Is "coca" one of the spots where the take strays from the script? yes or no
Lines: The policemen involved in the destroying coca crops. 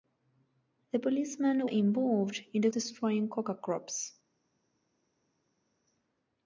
no